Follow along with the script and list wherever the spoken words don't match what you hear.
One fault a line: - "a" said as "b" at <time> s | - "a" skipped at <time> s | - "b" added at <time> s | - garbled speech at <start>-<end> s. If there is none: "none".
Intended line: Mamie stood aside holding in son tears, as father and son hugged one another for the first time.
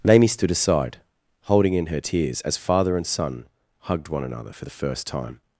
- "son" said as "her" at 1.9 s